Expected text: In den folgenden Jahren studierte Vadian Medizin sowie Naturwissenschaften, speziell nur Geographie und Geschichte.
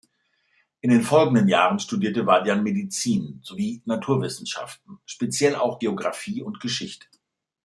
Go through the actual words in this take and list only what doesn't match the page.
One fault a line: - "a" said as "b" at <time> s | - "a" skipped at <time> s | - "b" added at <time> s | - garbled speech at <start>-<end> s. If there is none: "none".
- "nur" said as "auch" at 5.6 s